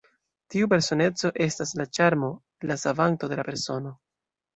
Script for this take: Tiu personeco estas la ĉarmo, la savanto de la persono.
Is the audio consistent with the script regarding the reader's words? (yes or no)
yes